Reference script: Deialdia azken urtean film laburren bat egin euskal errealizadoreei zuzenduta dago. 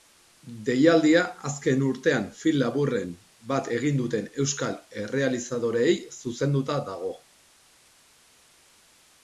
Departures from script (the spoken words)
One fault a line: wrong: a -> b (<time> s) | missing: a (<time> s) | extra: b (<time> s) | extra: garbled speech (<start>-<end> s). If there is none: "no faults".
extra: duten (4.0 s)